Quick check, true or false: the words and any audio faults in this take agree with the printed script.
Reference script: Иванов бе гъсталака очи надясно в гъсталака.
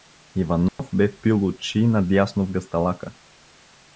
false